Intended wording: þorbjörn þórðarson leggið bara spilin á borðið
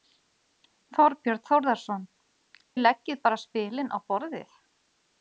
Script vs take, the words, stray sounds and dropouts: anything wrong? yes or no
no